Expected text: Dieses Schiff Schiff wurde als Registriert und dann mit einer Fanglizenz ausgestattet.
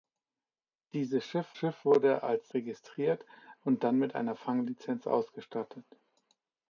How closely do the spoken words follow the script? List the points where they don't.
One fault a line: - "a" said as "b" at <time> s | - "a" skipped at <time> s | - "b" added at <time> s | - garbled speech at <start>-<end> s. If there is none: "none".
none